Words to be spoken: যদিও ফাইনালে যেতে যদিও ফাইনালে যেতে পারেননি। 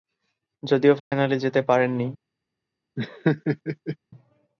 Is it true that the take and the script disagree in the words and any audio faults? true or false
true